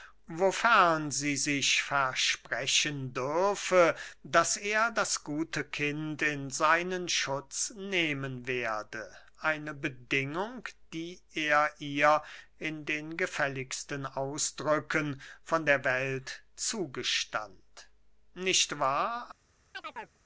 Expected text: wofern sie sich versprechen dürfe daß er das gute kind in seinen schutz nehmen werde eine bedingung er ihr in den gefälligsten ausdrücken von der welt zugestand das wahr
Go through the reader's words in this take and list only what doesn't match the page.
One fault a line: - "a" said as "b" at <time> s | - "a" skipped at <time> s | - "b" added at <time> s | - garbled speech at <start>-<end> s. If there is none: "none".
- "die" added at 10.9 s
- "das" said as "nicht" at 18.3 s